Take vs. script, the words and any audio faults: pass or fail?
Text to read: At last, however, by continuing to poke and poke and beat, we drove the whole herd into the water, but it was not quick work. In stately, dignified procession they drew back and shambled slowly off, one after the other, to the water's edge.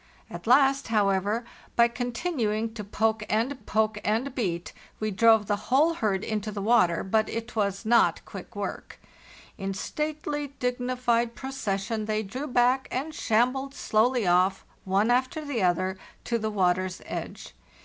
pass